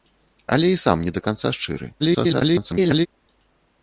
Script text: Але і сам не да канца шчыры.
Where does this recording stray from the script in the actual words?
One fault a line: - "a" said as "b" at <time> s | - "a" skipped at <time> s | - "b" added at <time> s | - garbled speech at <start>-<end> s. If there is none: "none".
- garbled speech at 2.0-3.1 s